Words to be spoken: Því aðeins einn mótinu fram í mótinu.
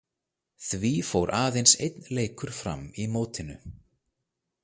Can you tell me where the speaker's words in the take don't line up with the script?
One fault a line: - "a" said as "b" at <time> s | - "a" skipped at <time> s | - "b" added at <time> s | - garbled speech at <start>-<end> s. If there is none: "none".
- "fór" added at 1.1 s
- "mótinu" said as "leikur" at 2.2 s